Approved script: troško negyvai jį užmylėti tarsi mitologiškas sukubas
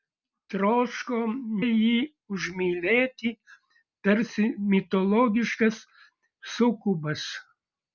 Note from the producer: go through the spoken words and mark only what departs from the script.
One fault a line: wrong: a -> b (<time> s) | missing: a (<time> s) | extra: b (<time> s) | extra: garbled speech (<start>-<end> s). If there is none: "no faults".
missing: negyvai (1.2 s)